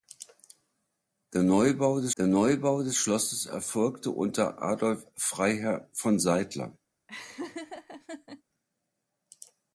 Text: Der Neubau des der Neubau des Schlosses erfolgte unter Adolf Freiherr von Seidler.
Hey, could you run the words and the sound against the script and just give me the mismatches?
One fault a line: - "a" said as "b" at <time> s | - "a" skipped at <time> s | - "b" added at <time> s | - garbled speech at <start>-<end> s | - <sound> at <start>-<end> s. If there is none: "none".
- laugh at 7.1-8.4 s